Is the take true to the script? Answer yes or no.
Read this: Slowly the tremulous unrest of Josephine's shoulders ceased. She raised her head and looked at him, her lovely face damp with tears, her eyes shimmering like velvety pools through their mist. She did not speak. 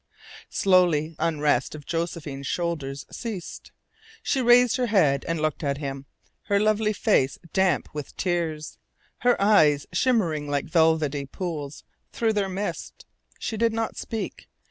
no